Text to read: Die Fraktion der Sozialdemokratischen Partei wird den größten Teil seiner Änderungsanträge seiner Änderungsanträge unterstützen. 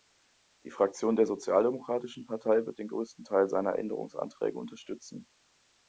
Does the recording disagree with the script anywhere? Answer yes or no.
yes